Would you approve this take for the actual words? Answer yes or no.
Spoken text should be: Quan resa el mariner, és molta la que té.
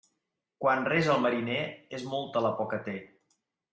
no